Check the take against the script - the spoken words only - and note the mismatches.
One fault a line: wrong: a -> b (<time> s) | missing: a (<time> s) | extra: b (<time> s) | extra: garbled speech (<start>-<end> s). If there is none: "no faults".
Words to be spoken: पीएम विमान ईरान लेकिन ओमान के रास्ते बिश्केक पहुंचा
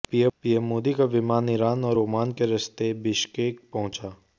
extra: मोदी का (0.6 s)
wrong: लेकिन -> और (1.9 s)